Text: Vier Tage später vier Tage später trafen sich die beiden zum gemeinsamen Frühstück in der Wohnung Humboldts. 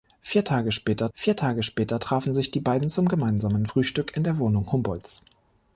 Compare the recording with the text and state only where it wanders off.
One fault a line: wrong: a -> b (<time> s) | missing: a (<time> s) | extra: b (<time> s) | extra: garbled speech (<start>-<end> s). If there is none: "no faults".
no faults